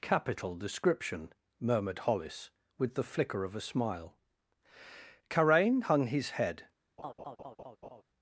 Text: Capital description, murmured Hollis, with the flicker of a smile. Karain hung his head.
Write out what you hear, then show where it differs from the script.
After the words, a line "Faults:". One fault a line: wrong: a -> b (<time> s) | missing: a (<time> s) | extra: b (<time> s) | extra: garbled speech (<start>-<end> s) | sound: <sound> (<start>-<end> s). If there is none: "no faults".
Capital description, murmured Hollis, with the flicker of a smile. Karain hung his head.
Faults:
sound: laugh (7.0-8.0 s)